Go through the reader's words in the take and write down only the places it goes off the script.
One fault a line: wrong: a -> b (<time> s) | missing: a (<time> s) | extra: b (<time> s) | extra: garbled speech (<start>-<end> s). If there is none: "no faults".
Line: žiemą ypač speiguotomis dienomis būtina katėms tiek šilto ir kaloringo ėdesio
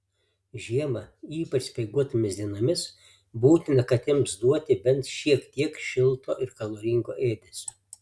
extra: duoti bent šiek (4.4 s)